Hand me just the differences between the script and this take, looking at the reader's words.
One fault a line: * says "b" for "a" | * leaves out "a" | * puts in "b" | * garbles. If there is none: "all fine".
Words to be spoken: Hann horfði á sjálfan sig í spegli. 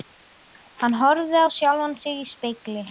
all fine